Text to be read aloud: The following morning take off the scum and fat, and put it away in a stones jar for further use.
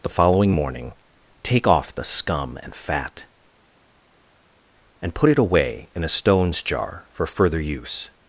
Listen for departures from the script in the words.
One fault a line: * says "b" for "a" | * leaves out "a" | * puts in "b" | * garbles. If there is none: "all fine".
all fine